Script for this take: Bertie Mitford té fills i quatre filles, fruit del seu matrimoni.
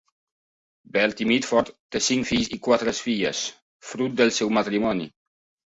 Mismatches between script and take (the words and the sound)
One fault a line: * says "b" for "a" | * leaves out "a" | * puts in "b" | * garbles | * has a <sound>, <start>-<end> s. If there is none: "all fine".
* puts in "cinc"